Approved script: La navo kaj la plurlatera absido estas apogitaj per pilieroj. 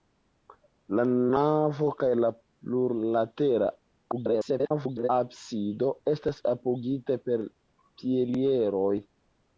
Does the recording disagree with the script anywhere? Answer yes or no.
yes